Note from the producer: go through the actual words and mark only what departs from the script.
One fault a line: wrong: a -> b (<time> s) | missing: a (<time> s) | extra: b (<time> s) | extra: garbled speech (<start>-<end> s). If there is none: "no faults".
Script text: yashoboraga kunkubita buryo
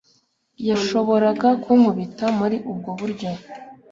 extra: muri ubwo (2.4 s)